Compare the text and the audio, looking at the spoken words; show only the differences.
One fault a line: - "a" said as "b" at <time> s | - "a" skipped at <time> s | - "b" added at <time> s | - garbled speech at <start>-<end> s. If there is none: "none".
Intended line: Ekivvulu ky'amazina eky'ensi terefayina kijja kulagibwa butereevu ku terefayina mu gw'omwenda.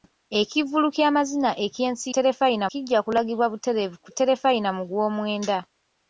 none